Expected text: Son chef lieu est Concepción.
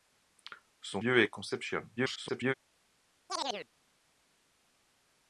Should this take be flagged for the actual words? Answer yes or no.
yes